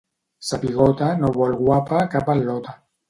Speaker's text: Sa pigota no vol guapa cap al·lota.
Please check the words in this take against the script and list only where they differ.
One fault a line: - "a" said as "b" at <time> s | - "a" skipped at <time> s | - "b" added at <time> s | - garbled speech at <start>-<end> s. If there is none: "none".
none